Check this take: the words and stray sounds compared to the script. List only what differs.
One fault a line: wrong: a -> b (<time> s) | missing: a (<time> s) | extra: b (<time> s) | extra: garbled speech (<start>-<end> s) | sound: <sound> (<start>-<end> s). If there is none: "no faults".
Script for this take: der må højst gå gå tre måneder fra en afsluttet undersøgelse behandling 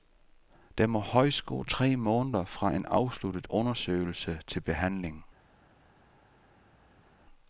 missing: gå (1.6 s)
extra: til (4.5 s)